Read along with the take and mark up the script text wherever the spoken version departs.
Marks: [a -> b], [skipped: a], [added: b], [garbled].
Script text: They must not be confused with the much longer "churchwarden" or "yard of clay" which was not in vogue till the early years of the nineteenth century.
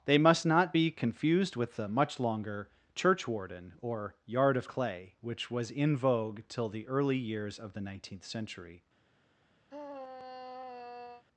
They must not be confused with the much longer "churchwarden" or "yard of clay" which was [skipped: not] in vogue till the early years of the nineteenth century.